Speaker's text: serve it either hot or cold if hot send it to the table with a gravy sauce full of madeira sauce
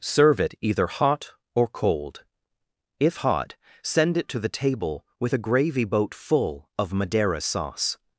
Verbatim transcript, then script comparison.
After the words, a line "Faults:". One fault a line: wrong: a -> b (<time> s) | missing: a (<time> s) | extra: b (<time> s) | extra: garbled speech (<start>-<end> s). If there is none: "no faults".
serve it either hot or cold if hot send it to the table with a gravy boat full of madeira sauce
Faults:
wrong: sauce -> boat (5.8 s)